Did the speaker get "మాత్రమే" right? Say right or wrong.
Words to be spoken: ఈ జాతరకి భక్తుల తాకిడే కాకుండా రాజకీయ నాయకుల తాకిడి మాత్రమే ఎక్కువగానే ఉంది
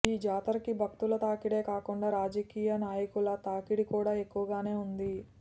wrong